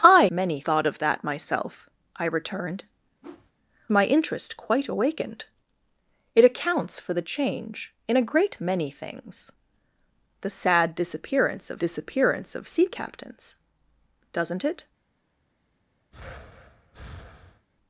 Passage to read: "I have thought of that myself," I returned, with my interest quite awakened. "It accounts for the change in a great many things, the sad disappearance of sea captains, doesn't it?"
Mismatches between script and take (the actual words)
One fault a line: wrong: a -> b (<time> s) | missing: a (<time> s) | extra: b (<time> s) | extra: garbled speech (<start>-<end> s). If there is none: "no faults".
wrong: have -> many (0.3 s)
missing: with (2.8 s)
extra: disappearance of (11.8 s)